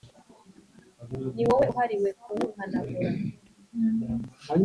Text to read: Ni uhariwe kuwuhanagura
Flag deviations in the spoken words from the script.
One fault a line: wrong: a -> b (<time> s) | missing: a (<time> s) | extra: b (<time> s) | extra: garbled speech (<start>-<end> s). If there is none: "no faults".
extra: wowe (1.5 s)